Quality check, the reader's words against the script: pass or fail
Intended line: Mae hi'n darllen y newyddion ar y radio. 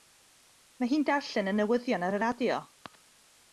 pass